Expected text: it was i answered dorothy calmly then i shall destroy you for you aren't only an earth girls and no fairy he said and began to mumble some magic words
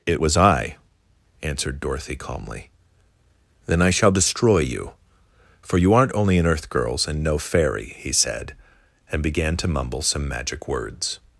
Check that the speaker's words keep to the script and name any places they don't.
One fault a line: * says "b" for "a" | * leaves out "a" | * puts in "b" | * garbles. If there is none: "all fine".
all fine